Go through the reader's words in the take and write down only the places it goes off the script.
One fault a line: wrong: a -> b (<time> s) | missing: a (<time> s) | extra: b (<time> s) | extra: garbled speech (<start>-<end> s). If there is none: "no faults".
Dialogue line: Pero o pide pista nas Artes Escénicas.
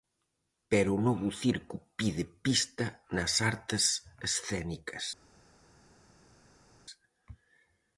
extra: novo circo (1.1 s)